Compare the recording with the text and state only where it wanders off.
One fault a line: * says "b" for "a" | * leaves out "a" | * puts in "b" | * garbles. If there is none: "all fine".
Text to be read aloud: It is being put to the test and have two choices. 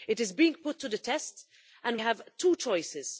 all fine